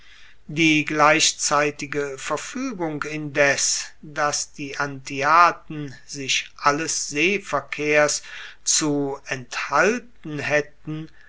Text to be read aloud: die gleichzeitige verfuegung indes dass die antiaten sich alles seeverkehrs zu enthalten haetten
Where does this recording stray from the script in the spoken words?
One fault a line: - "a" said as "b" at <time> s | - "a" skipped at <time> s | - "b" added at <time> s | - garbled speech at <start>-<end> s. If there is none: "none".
none